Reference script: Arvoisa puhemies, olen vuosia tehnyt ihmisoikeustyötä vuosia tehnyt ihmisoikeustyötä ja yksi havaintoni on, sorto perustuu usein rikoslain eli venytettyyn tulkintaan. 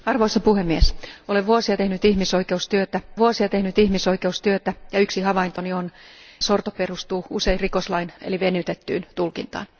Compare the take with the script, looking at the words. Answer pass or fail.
pass